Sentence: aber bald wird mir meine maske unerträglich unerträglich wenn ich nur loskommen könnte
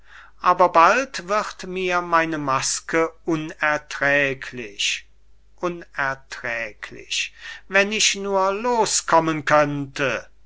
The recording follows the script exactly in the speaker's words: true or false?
true